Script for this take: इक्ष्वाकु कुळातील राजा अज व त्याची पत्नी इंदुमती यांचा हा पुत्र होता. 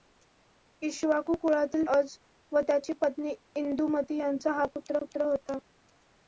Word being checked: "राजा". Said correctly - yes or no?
no